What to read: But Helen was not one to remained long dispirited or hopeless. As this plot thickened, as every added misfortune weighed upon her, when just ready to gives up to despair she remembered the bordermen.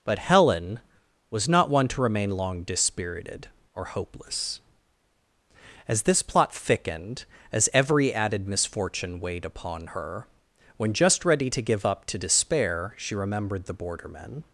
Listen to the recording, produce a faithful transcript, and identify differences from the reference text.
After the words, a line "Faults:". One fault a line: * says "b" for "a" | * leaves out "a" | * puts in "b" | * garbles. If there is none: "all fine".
But Helen was not one to remain long dispirited or hopeless. As this plot thickened, as every added misfortune weighed upon her, when just ready to give up to despair she remembered the bordermen.
Faults:
* says "remain" for "remained"
* says "give" for "gives"